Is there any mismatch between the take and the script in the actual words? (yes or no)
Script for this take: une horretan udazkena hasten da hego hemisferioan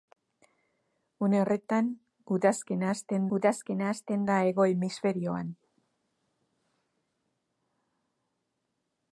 yes